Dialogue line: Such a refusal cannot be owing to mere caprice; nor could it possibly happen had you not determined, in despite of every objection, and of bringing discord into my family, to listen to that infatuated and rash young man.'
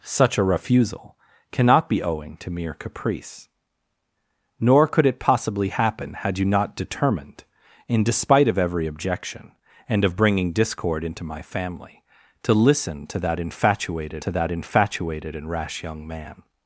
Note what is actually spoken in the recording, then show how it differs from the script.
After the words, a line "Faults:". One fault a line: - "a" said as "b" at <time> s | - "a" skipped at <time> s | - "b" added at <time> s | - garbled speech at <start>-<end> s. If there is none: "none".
Such a refusal cannot be owing to mere caprice; nor could it possibly happen had you not determined, in despite of every objection, and of bringing discord into my family, to listen to that infatuated to that infatuated and rash young man.'
Faults:
- "to that infatuated" added at 14.2 s